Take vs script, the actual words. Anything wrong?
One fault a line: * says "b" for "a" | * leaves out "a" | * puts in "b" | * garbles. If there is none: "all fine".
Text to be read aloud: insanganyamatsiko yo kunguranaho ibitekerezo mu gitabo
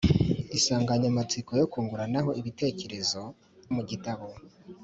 all fine